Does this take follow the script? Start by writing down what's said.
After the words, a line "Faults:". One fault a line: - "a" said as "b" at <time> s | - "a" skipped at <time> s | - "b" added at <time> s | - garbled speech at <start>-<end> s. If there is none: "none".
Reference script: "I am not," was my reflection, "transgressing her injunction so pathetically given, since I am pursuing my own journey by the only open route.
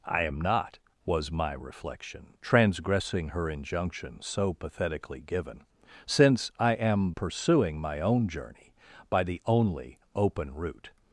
"I am not," was my reflection, "transgressing her injunction so pathetically given, since I am pursuing my own journey by the only open route.
Faults:
none